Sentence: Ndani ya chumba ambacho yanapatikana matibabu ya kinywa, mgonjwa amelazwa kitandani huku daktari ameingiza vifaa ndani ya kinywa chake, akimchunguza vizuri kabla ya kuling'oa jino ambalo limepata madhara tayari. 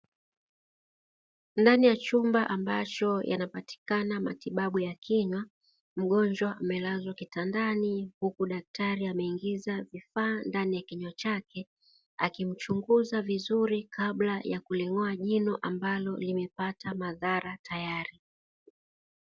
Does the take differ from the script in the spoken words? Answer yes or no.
no